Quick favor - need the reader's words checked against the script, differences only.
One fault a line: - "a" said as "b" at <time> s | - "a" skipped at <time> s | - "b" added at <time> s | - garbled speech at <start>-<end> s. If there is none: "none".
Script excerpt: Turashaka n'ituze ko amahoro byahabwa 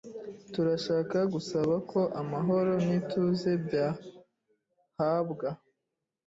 - "n'ituze" said as "gusaba" at 1.3 s
- "n'ituze" added at 2.8 s